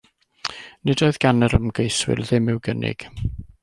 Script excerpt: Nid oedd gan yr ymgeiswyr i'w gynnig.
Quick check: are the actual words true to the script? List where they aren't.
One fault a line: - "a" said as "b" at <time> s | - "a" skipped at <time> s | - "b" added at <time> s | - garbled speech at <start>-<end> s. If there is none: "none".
- "ddim" added at 2.2 s